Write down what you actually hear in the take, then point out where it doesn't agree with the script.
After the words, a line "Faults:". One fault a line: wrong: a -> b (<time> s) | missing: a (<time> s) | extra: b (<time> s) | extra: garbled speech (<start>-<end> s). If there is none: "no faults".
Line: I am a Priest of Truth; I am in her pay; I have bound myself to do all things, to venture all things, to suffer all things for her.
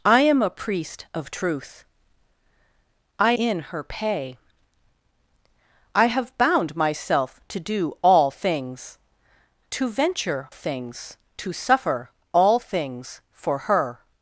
I am a Priest of Truth; I in her pay; I have bound myself to do all things, to venture things, to suffer all things for her.
Faults:
missing: am (3.3 s)
missing: all (10.5 s)